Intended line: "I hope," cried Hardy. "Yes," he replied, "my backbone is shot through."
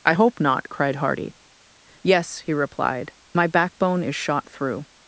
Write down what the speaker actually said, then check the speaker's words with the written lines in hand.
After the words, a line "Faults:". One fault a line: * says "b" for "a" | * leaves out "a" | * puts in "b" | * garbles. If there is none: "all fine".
"I hope not," cried Hardy. "Yes," he replied, "my backbone is shot through."
Faults:
* puts in "not"